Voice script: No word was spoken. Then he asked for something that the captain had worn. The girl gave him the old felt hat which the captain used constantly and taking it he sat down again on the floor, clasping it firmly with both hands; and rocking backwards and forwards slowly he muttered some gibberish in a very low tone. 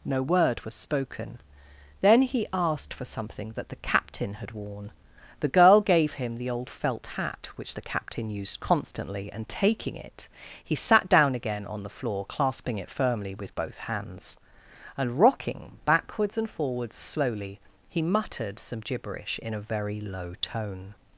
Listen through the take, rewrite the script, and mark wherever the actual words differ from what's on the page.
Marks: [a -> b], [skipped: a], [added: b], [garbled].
No word was spoken. Then he asked for something that the captain had worn. The girl gave him the old felt hat which the captain used constantly and taking it he sat down again on the floor, clasping it firmly with both hands; and rocking backwards and forwards slowly he muttered some gibberish in a very low tone.